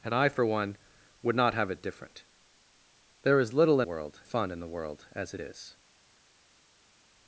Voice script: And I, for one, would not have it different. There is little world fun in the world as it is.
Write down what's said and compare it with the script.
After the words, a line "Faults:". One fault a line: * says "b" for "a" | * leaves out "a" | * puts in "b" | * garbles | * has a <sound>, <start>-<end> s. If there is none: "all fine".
And I, for one, would not have it different. There is little world fun in the world as it is.
Faults:
all fine